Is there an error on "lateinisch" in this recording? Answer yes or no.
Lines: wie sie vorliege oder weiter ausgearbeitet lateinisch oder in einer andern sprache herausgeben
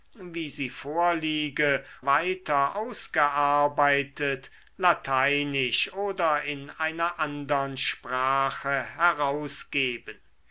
no